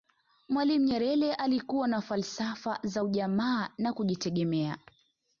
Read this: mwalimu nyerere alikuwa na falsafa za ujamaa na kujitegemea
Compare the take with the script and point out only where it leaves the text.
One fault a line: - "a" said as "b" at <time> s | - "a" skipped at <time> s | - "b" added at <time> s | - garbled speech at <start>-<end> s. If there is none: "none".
none